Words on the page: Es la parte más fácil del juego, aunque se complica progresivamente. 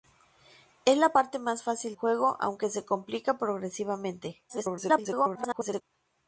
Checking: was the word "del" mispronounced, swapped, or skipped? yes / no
yes